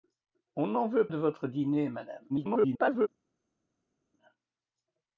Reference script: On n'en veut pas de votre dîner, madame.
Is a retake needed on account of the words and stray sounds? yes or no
yes